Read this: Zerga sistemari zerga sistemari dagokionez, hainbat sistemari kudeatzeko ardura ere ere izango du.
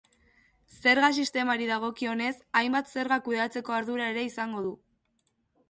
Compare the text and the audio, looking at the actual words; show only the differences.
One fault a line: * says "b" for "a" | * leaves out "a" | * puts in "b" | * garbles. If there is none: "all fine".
* leaves out "zerga sistemari"
* says "zerga" for "sistemari"
* leaves out "ere"